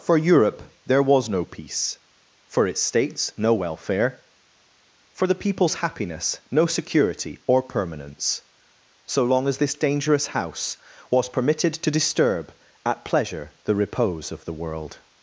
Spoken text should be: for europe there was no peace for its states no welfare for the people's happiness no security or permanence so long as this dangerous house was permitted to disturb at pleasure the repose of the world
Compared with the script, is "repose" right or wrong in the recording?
right